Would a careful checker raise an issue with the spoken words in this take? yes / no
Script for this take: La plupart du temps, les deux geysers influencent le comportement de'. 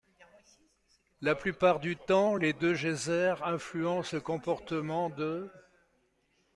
no